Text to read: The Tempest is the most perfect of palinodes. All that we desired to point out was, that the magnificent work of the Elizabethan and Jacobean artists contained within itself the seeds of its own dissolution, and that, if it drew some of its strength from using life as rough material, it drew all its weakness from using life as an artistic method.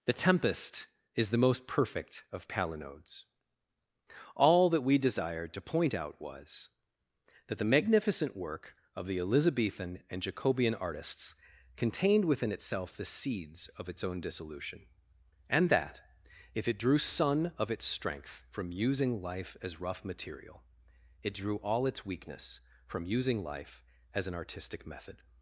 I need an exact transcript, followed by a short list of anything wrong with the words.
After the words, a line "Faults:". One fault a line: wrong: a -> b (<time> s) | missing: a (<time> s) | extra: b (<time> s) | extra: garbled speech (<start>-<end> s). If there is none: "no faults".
The Tempest is the most perfect of palinodes. All that we desired to point out was, that the magnificent work of the Elizabethan and Jacobean artists contained within itself the seeds of its own dissolution, and that, if it drew sun of its strength from using life as rough material, it drew all its weakness from using life as an artistic method.
Faults:
wrong: some -> sun (17.0 s)